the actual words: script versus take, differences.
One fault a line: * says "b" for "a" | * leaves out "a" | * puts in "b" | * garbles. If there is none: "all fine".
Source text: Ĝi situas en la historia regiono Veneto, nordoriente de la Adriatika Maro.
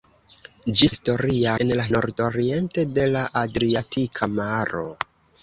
* says "historia" for "situas"
* leaves out "historia regiono Veneto"